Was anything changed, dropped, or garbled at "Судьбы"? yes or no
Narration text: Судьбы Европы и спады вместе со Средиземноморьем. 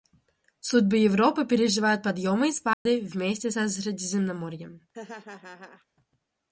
no